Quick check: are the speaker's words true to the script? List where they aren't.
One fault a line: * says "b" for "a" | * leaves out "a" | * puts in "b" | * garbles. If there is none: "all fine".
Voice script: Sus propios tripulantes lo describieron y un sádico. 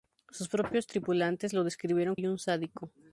all fine